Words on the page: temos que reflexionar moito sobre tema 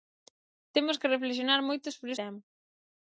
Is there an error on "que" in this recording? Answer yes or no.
no